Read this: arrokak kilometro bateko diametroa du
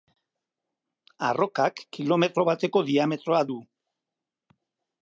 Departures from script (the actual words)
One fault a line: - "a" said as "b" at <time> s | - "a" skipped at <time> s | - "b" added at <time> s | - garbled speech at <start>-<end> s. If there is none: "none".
none